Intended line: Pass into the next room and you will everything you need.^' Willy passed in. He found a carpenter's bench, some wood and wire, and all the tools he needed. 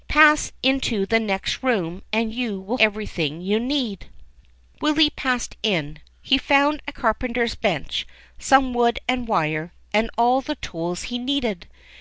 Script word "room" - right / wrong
right